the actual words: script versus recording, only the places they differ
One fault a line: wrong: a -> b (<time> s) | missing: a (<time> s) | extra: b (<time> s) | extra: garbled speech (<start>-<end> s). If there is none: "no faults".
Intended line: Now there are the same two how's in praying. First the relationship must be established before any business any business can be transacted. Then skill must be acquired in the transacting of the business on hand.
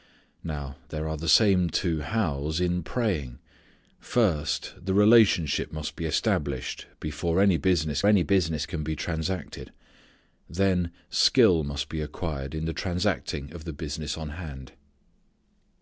no faults